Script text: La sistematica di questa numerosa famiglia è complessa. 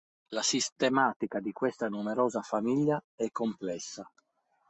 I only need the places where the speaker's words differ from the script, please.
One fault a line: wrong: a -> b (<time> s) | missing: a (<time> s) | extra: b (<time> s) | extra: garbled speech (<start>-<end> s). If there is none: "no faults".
no faults